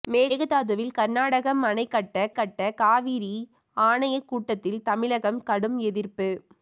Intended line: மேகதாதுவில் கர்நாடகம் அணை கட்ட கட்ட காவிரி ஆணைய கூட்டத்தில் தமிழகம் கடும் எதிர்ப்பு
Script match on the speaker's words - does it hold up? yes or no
yes